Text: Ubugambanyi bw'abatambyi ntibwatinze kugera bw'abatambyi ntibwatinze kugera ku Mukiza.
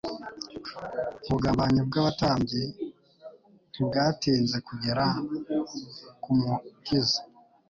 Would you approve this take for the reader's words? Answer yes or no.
no